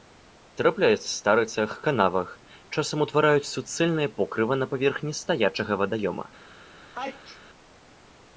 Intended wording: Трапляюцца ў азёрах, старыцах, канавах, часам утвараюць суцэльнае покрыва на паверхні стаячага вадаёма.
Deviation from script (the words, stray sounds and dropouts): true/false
true